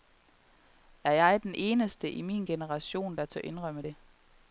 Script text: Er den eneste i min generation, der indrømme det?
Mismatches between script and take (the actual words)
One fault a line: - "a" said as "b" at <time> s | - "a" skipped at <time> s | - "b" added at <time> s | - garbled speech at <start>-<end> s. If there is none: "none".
- "jeg" added at 1.1 s
- "tør" added at 3.3 s